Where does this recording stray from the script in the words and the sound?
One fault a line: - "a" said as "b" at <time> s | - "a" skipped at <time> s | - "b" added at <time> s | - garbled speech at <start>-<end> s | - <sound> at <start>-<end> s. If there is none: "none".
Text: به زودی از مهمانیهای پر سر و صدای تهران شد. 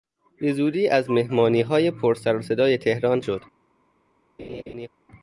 - laugh at 4.4-4.9 s